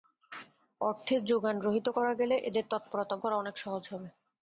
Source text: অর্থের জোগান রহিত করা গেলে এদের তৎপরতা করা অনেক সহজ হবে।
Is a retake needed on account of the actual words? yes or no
no